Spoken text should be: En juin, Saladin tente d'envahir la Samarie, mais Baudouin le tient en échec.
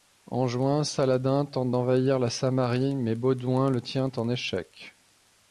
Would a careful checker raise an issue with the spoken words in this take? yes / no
no